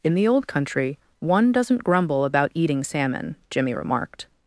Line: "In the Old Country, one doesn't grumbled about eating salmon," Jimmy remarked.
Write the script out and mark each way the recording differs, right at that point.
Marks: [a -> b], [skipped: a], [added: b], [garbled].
"In the Old Country, one doesn't [grumbled -> grumble] about eating salmon," Jimmy remarked.